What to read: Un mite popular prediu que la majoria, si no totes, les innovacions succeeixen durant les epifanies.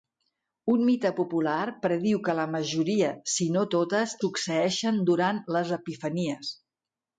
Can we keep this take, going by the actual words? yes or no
no